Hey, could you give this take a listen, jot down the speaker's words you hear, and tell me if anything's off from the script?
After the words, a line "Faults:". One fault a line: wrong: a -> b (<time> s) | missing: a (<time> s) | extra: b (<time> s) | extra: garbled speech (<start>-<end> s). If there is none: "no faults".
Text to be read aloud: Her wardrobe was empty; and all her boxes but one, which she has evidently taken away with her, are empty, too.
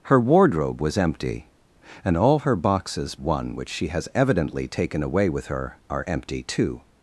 Her wardrobe was empty; and all her boxes one, which she has evidently taken away with her, are empty, too.
Faults:
missing: but (3.1 s)